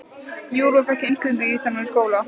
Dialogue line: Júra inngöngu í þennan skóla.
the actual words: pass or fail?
fail